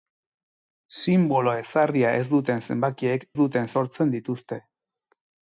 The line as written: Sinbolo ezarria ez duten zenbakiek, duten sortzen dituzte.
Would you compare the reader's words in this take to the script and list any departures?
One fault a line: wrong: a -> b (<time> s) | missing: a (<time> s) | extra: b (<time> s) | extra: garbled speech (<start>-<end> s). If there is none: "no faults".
no faults